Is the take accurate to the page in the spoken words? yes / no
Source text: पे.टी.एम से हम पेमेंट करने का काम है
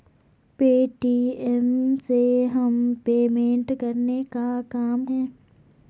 yes